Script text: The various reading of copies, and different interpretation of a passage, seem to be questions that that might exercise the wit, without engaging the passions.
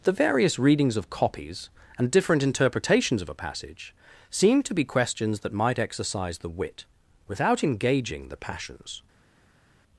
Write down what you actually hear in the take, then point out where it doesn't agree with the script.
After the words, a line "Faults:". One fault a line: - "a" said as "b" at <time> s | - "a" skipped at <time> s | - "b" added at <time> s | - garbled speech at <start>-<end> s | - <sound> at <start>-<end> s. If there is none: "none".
The various readings of copies, and different interpretations of a passage, seem to be questions that might exercise the wit, without engaging the passions.
Faults:
- "reading" said as "readings" at 0.6 s
- "interpretation" said as "interpretations" at 2.4 s
- "that" skipped at 5.5 s